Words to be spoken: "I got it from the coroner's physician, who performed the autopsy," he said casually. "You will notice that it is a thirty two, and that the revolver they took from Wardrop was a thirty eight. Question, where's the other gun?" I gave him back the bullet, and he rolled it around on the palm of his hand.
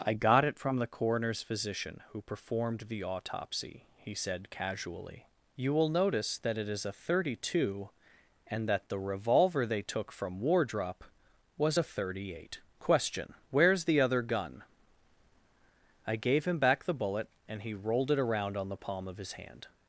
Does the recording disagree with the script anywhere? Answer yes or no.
no